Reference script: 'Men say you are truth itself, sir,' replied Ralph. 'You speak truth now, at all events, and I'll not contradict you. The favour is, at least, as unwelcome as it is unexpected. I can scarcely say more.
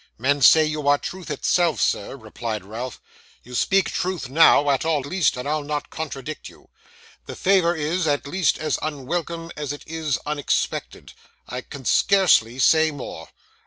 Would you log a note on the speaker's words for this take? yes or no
yes